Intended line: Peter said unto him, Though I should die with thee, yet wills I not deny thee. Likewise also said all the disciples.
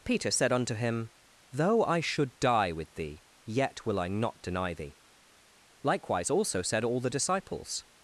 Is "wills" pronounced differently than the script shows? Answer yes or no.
yes